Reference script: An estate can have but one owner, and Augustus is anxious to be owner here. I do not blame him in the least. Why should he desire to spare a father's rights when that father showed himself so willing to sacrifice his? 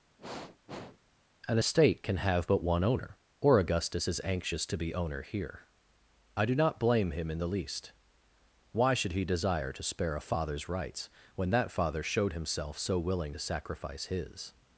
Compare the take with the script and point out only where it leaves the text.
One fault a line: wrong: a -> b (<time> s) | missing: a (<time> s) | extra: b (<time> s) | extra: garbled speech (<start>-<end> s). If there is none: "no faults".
wrong: and -> or (3.4 s)